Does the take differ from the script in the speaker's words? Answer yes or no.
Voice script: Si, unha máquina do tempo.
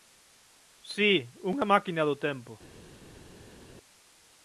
no